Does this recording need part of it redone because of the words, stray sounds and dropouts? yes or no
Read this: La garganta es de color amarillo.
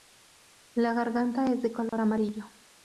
yes